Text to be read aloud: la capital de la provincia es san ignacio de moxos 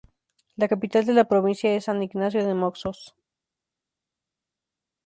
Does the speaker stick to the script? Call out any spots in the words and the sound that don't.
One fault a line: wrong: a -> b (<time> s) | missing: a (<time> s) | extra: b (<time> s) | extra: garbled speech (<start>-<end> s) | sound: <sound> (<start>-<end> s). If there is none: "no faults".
no faults